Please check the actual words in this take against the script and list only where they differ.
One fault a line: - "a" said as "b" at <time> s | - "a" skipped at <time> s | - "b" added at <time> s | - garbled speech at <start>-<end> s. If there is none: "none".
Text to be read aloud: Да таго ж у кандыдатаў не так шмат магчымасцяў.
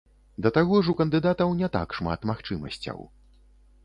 none